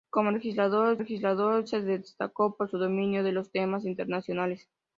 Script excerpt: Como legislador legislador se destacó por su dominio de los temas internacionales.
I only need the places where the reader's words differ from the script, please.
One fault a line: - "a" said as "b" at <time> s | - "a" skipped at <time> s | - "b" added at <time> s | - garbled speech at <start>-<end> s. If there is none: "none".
none